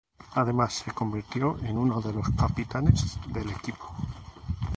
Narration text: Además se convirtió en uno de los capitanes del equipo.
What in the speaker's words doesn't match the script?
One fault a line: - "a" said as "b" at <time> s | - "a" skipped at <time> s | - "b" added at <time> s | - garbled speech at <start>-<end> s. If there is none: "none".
none